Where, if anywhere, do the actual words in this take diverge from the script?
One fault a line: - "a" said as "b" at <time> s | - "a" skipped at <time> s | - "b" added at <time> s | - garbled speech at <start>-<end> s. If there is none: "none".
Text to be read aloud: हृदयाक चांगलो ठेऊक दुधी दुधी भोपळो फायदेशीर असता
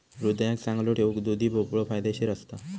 - "दुधी" skipped at 1.5 s